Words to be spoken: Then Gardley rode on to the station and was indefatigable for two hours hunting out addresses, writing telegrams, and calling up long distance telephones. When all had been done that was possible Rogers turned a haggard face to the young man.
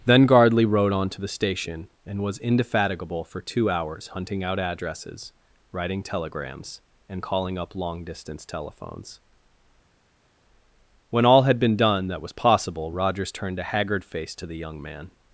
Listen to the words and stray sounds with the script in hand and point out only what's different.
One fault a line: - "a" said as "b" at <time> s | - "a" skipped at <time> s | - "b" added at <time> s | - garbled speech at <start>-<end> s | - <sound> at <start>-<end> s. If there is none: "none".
none